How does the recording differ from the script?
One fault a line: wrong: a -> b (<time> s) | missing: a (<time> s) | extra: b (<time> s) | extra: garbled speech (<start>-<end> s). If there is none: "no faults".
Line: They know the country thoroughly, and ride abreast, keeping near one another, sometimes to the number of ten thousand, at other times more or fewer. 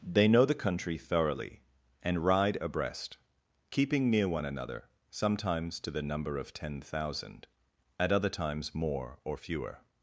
no faults